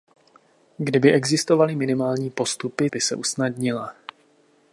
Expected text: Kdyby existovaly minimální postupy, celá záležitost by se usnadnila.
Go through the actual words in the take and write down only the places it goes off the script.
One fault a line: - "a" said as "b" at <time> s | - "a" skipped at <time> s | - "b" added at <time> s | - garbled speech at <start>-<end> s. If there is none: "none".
- "celá záležitost" skipped at 2.9 s